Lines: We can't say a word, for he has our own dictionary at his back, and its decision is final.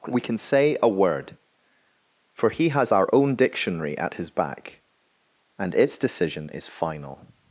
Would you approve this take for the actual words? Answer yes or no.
no